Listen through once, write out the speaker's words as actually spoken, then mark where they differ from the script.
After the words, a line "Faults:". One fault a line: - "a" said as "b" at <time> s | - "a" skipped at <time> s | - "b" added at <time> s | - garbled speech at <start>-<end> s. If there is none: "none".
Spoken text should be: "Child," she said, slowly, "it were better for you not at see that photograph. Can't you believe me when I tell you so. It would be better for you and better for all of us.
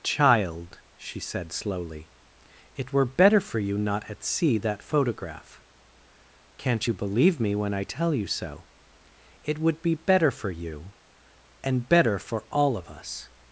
"Child," she said, slowly, "it were better for you not at see that photograph. Can't you believe me when I tell you so. It would be better for you and better for all of us.
Faults:
none